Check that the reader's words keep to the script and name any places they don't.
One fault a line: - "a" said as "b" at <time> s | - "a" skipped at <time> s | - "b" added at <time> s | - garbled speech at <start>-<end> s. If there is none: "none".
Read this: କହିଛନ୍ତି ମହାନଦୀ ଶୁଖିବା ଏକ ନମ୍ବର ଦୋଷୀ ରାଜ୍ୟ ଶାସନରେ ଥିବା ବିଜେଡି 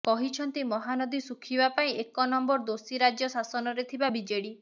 - "ପାଇଁ" added at 1.8 s